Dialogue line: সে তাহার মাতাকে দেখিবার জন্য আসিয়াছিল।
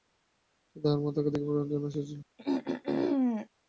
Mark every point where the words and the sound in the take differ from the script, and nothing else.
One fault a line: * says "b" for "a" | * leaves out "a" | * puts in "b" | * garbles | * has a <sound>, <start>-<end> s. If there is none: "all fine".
* has a throat clearing, 2.4-3.5 s